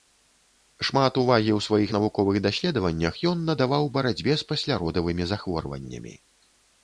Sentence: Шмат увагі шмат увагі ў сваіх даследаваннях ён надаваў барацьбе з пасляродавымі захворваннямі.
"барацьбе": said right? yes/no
yes